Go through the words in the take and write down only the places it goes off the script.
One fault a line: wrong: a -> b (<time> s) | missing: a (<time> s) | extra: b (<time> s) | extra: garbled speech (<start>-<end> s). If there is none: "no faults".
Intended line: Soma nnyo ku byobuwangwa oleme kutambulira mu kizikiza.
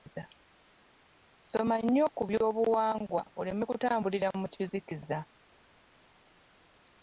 no faults